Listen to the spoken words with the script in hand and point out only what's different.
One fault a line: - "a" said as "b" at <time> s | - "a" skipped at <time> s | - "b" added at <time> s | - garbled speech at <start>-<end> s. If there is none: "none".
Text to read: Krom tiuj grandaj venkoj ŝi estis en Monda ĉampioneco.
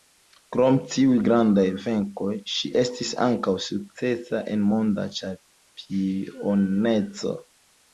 - "ankaŭ sukcesa" added at 3.3 s